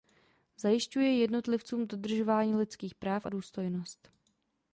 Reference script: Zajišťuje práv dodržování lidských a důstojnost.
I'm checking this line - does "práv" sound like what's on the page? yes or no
no